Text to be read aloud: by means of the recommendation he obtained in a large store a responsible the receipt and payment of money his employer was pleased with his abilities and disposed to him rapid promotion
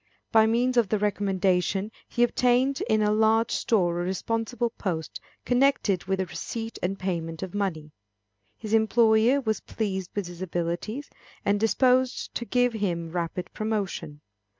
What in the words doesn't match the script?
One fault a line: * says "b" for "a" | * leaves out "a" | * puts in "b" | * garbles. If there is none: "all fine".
* puts in "post connected with"
* puts in "give"